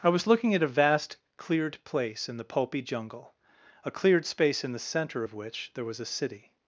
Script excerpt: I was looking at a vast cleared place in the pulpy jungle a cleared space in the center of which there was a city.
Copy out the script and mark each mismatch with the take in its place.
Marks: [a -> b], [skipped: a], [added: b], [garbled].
I was looking at a vast cleared place in the pulpy jungle a cleared space in the center of which there was a city.